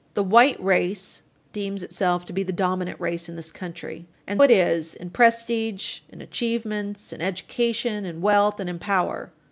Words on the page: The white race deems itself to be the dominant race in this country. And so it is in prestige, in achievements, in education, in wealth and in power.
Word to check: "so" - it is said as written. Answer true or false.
false